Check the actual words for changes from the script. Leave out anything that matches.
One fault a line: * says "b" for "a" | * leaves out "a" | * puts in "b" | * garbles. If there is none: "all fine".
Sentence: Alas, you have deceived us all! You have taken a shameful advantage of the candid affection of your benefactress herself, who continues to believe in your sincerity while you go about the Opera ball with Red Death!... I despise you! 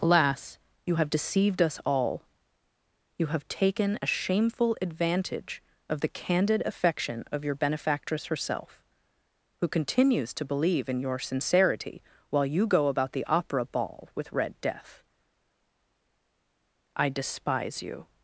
all fine